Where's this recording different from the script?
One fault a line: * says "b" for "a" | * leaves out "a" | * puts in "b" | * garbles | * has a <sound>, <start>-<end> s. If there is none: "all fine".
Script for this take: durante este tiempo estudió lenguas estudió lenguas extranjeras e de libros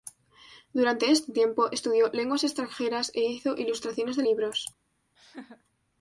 * says "extranjeras e hizo ilustraciones" for "estudió lenguas extranjeras e"
* has a laugh, 5.2-5.6 s